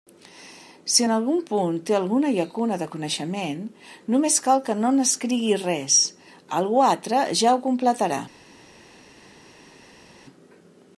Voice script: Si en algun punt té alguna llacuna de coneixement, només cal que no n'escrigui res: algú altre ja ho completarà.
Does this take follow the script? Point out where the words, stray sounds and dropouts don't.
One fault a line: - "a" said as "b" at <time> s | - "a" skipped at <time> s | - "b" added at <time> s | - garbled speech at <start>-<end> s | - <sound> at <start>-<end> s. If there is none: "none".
none